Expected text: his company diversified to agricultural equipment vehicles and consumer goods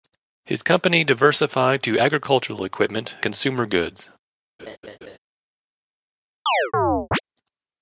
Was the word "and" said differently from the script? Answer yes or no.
yes